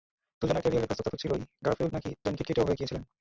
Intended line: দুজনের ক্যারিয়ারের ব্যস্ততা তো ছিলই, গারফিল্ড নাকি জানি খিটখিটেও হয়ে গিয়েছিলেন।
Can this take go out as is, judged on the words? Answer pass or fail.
pass